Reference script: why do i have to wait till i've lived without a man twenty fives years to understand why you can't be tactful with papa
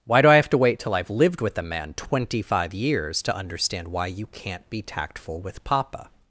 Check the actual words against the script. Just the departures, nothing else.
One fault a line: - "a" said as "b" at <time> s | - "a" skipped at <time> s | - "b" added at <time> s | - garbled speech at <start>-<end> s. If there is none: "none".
- "without" said as "with" at 1.4 s
- "fives" said as "five" at 2.4 s